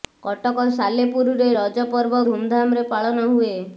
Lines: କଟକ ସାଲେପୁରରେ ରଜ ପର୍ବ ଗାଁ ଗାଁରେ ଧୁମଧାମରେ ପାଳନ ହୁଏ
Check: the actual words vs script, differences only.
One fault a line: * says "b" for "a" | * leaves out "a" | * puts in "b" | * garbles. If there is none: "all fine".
* leaves out "ଗାଁ ଗାଁରେ"